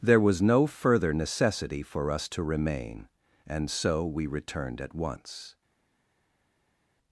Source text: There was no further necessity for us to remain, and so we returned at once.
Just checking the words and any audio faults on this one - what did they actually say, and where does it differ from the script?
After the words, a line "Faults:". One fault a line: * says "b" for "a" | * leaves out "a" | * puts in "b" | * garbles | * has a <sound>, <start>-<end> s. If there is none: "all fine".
There was no further necessity for us to remain, and so we returned at once.
Faults:
all fine